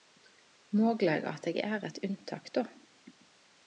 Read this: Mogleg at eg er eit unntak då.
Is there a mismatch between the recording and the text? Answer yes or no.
no